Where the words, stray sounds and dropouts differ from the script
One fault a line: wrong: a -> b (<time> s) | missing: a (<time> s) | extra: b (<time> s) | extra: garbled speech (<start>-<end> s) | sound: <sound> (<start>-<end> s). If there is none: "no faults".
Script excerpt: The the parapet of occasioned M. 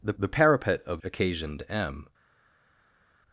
no faults